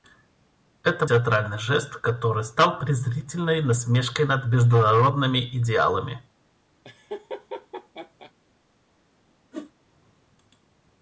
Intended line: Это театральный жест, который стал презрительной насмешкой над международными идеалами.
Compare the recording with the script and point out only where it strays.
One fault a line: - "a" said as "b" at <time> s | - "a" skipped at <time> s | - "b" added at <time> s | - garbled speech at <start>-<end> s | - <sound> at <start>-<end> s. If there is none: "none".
- laugh at 6.8-8.3 s
- whoosh at 9.5-9.7 s